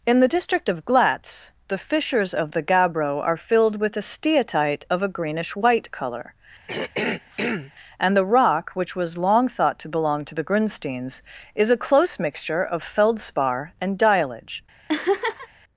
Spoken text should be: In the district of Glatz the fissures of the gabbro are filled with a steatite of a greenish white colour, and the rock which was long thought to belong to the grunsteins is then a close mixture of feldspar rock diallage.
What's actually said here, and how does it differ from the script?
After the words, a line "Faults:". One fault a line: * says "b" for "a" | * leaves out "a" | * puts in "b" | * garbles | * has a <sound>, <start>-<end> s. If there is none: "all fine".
In the district of Glatz the fissures of the gabbro are filled with a steatite of a greenish white colour, and the rock which was long thought to belong to the grunsteins is a close mixture of feldspar and diallage.
Faults:
* has a throat clearing, 6.7-7.7 s
* leaves out "then"
* says "and" for "rock"
* has a laugh, 14.9-15.5 s